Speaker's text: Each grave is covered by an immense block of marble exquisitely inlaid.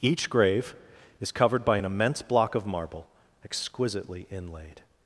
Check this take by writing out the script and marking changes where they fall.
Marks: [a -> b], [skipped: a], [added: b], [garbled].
Each grave is covered by an immense block of marble exquisitely inlaid.